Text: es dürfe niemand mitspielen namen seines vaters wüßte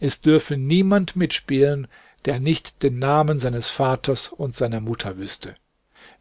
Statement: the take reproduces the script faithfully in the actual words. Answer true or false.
false